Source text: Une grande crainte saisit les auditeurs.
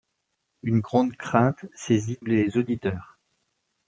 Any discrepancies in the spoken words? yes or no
no